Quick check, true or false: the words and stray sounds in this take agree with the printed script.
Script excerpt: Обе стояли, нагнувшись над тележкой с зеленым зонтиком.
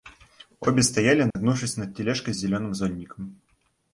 false